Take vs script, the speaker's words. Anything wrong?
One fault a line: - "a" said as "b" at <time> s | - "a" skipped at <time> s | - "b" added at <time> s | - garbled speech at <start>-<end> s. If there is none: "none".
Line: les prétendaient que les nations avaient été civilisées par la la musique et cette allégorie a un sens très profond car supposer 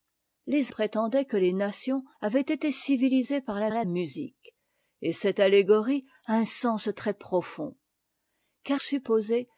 none